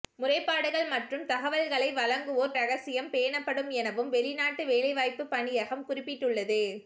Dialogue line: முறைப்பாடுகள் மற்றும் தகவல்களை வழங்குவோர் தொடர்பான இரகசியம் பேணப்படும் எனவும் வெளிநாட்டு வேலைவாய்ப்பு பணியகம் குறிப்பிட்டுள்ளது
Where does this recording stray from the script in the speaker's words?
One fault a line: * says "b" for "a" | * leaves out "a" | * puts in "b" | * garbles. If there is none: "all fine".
* leaves out "தொடர்பான"